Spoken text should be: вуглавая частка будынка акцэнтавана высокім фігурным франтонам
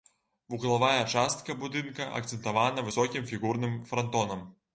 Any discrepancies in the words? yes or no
no